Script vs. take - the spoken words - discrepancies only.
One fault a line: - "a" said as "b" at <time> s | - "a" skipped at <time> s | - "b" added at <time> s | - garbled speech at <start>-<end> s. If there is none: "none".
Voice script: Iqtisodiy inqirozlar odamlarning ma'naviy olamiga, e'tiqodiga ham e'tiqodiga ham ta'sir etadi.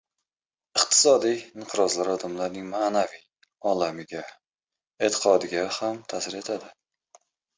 - "e'tiqodiga ham" skipped at 6.0 s